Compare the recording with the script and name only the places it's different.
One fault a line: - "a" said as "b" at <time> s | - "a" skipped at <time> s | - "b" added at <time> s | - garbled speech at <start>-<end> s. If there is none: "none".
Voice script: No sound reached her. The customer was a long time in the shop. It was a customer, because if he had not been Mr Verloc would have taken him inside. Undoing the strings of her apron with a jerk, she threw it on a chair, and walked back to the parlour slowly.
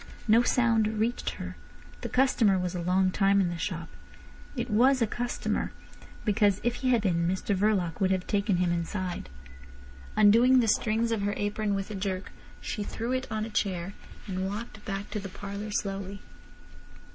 - "not" skipped at 7.0 s